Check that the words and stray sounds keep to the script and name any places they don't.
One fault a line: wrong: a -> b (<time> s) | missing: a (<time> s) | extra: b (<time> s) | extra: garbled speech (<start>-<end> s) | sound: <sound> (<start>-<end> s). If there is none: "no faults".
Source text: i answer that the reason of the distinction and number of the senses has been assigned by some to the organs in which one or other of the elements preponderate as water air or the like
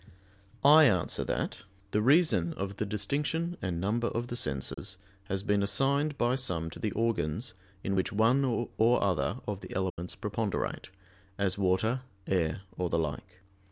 sound: dropout (4.7-4.8 s)
sound: dropout (9.9-10.0 s)